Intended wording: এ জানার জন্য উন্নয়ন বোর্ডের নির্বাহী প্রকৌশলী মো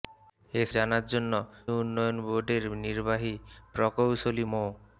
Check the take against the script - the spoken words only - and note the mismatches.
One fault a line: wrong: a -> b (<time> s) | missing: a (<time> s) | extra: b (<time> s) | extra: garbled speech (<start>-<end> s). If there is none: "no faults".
no faults